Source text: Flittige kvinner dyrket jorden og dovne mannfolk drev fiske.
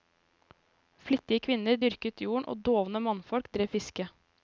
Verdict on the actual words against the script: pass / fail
pass